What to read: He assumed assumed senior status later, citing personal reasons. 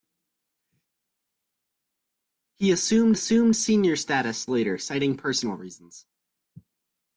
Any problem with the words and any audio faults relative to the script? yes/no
no